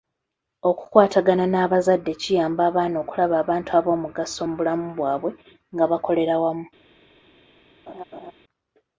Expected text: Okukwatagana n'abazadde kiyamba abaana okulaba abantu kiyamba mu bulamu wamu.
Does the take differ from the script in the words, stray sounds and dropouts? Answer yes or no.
yes